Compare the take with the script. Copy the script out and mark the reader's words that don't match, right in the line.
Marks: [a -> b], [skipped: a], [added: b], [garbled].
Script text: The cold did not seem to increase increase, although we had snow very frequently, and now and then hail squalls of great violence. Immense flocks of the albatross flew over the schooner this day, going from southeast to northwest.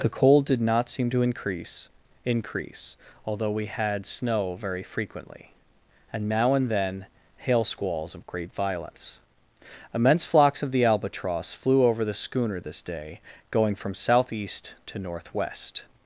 The cold did not seem to increase increase, although we had snow very frequently, and now and then hail squalls of great violence. Immense flocks of the albatross flew over the schooner this day, going from southeast to northwest.